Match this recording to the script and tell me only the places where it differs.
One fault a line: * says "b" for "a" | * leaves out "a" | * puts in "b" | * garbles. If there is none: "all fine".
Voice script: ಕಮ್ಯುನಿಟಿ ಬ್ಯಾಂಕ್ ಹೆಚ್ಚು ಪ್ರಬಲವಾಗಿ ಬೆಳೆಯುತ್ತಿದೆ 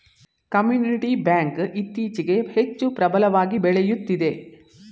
* puts in "ಇತ್ತೀಚೆಗೆ"